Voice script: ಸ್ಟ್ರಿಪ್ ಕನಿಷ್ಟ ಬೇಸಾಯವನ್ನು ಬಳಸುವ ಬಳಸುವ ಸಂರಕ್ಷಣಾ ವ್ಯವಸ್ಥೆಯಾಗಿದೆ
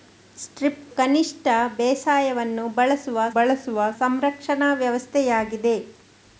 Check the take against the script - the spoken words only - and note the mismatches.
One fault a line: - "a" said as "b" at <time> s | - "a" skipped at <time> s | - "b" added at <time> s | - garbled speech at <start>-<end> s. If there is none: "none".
none